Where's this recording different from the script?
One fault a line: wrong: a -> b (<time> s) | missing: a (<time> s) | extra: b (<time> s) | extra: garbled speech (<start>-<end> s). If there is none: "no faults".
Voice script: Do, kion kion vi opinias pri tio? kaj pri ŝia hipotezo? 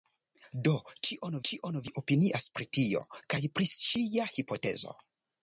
no faults